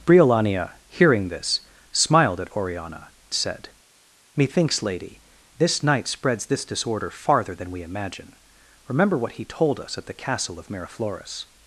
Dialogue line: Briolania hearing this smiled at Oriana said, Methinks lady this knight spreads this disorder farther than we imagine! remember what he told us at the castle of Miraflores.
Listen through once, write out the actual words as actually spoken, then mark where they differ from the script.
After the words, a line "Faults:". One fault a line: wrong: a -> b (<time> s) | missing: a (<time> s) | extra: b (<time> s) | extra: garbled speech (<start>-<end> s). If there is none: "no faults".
Briolania hearing this smiled at Oriana said, Methinks lady this knight spreads this disorder farther than we imagine! remember what he told us at the castle of Miraflores.
Faults:
no faults